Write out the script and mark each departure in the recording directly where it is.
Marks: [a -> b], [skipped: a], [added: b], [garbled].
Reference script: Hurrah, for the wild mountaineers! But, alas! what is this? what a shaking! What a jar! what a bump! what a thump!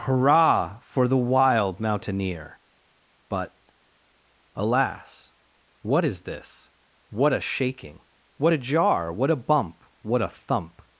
Hurrah, for the wild [mountaineers! -> mountaineer] But, alas! what is this? what a shaking! What a jar! what a bump! what a thump!